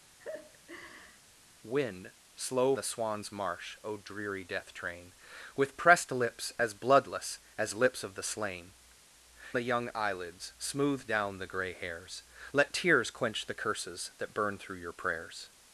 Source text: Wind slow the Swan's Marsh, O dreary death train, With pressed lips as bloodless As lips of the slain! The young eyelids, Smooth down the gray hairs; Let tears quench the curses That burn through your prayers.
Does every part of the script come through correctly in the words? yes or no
yes